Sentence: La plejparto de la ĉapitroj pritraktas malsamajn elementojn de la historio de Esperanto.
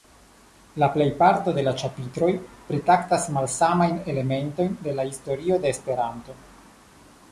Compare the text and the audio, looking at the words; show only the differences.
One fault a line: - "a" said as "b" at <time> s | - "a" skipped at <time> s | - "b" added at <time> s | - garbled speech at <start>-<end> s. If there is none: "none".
none